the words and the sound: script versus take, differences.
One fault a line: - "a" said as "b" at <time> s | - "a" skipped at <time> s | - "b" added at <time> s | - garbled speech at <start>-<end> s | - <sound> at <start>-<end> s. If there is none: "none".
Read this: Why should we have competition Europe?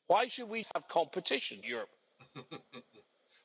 - dropout at 0.7-0.8 s
- laugh at 2.2-3.1 s